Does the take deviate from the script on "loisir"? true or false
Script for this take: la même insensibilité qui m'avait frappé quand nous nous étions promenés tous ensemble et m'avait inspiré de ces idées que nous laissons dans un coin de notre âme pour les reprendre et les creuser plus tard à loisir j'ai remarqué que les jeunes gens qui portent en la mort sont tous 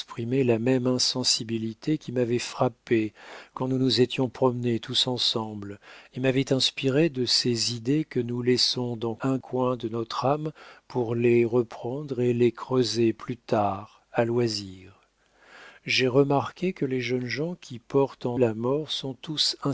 false